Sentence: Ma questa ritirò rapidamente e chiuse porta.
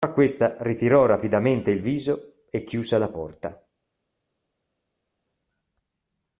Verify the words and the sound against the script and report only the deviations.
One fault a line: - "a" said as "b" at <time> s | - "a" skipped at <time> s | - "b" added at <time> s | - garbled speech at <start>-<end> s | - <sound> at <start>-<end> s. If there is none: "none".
- "il viso" added at 1.7 s
- "la" added at 3.0 s